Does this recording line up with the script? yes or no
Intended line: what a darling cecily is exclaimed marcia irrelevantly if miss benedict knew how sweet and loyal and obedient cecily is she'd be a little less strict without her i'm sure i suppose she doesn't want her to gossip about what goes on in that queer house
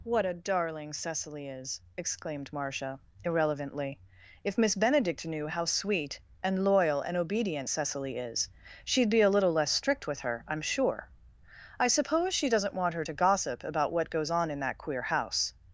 no